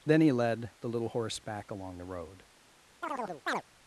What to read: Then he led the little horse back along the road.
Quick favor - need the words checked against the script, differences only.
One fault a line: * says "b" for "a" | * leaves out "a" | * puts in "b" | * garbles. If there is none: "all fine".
all fine